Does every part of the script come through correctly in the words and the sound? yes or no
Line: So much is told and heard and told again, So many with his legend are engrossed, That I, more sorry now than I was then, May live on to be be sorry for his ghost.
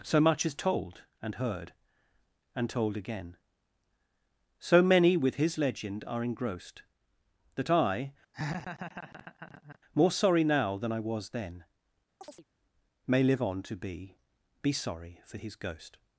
no